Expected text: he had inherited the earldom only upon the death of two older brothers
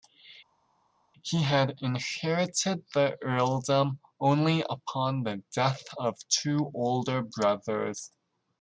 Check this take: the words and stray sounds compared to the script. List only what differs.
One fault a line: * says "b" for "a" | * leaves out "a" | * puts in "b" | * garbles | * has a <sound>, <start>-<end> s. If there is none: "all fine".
all fine